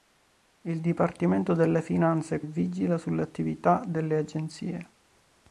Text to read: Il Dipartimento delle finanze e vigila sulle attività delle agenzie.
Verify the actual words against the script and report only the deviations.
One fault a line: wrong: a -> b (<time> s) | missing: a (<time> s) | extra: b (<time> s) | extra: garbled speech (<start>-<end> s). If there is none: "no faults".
no faults